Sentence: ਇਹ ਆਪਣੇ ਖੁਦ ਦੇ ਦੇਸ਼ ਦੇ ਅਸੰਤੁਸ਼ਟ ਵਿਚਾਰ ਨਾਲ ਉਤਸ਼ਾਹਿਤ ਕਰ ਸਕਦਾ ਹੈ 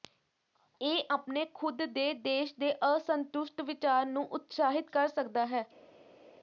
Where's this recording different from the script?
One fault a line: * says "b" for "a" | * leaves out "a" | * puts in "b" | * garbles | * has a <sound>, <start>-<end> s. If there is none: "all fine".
* says "ਨੂੰ" for "ਨਾਲ"